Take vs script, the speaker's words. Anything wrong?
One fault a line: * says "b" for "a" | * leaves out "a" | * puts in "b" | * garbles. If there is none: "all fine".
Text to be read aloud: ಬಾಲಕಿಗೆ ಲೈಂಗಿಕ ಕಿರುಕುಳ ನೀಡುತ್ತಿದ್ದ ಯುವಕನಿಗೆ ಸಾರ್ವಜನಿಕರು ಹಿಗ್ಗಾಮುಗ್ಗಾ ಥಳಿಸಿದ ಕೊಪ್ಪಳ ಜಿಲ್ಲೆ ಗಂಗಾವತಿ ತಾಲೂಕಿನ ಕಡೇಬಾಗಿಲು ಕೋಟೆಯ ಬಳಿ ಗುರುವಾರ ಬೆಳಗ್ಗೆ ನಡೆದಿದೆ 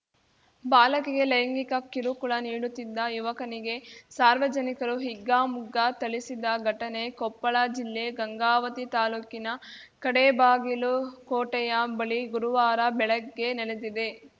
* puts in "ಘಟನೆ"